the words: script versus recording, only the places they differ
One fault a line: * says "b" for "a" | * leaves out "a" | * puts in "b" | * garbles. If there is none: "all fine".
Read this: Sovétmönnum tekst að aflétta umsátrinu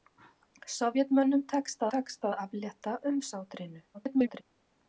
* puts in "tekst"
* garbles